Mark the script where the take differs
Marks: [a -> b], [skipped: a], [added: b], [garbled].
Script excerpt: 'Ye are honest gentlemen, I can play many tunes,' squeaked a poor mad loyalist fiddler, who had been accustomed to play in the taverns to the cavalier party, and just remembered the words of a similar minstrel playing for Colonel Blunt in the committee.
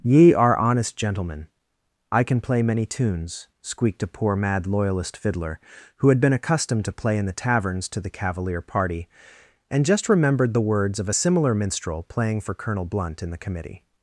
'Ye are honest gentlemen, I can play many tunes,' squeaked a poor mad loyalist fiddler, who had been accustomed to play in the taverns to the cavalier party, and just remembered the words of a similar minstrel playing for Colonel Blunt in the committee.